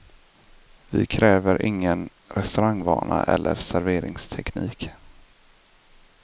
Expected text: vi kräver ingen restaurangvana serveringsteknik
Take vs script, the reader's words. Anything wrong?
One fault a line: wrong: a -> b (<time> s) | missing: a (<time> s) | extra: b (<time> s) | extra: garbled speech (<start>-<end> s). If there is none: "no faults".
extra: eller (3.2 s)